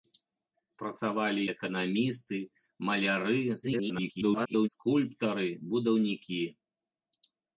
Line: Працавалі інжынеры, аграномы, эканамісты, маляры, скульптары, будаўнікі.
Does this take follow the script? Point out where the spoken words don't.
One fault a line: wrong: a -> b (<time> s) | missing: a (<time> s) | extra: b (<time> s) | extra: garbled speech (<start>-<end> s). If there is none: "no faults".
missing: інжынеры аграномы (1.4 s)
extra: garbled speech (3.6-4.7 s)